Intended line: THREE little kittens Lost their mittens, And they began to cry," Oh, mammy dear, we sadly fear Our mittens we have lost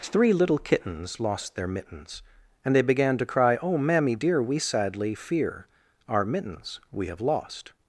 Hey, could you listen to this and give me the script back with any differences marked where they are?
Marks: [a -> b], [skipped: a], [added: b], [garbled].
THREE little kittens Lost their mittens, And they began to cry," Oh, mammy dear, we sadly fear Our mittens we have lost